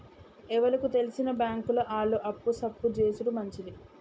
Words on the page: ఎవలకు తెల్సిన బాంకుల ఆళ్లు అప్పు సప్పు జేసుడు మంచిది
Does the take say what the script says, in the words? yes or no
yes